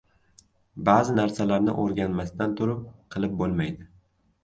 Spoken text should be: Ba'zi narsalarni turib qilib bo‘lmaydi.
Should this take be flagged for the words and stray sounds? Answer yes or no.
yes